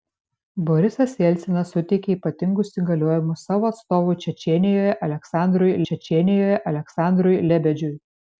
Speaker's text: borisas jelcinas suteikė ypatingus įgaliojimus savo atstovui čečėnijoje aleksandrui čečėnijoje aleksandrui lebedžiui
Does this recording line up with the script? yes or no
yes